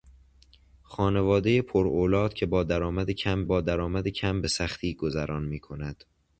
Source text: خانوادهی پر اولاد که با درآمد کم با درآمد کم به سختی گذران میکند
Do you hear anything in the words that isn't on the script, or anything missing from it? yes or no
no